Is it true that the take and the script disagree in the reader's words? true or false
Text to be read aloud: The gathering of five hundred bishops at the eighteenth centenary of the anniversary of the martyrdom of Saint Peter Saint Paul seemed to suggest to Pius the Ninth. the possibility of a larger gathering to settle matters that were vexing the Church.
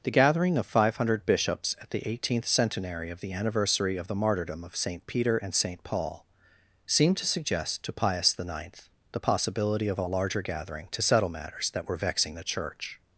true